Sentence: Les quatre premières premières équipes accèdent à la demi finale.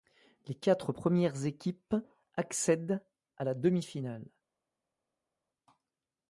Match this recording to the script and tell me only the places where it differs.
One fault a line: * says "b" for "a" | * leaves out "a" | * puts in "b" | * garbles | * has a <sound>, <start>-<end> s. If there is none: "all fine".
* leaves out "premières"